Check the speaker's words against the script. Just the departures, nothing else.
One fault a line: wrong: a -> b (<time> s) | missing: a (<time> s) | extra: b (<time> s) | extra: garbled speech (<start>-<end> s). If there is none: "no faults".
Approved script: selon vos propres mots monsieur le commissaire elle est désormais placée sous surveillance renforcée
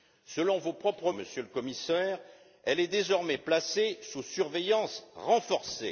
missing: mots (1.1 s)